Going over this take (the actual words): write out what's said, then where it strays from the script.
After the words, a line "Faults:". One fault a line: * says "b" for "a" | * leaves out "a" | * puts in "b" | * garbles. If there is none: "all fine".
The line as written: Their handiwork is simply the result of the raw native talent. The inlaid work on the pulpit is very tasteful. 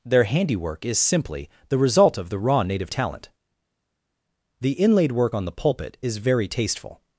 Their handiwork is simply the result of the raw native talent. The inlaid work on the pulpit is very tasteful.
Faults:
all fine